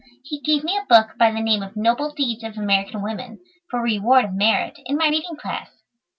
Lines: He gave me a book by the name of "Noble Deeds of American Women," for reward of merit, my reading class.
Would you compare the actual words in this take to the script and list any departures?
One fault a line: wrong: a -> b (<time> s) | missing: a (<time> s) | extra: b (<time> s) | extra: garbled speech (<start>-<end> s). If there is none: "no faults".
extra: in (4.9 s)